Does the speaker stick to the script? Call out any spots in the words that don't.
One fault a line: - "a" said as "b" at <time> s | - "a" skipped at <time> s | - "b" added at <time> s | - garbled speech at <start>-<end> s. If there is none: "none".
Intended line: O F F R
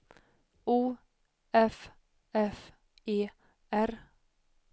- "E" added at 3.0 s